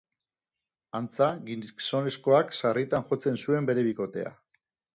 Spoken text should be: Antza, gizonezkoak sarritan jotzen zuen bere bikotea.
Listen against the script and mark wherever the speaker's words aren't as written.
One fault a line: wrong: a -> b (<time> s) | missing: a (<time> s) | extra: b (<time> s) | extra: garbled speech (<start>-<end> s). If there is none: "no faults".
no faults